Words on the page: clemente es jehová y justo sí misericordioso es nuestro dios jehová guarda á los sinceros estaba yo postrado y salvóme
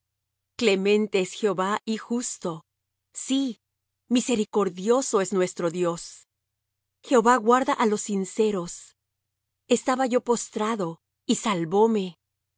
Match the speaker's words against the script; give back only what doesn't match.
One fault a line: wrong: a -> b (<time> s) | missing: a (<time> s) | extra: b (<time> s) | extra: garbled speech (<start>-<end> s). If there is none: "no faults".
no faults